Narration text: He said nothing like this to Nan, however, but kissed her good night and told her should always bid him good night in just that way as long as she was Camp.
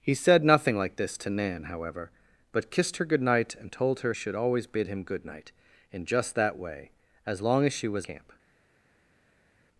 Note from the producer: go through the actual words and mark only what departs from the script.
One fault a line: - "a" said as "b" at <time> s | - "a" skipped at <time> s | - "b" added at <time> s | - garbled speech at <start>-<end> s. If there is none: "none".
none